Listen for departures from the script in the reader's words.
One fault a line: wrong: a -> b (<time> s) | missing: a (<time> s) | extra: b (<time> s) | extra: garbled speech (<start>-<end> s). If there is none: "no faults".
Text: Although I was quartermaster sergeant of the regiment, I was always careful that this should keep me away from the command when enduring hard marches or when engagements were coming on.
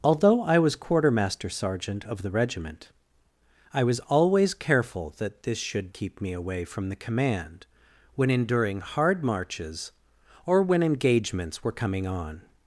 no faults